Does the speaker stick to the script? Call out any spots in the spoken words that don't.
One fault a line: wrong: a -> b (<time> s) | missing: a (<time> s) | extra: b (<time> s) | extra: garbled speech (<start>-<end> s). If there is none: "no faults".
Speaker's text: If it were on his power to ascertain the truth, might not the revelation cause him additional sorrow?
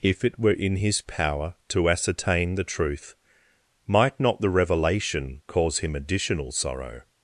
wrong: on -> in (0.5 s)